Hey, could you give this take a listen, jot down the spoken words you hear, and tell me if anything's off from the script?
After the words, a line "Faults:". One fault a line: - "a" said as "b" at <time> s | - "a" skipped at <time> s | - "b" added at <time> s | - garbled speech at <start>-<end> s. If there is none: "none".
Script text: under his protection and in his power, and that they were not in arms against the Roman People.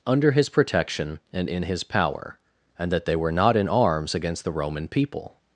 under his protection and in his power, and that they were not in arms against the Roman People.
Faults:
none